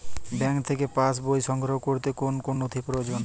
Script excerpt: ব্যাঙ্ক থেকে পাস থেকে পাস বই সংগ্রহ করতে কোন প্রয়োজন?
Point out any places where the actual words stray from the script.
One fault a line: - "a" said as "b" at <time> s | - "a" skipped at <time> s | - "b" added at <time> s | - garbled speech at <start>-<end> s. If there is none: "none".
- "থেকে পাস" skipped at 1.1 s
- "কোন নথি" added at 2.4 s